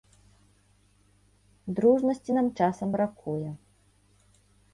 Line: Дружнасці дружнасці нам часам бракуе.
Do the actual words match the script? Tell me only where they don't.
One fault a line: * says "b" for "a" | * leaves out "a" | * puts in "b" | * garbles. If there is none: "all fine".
* leaves out "дружнасці"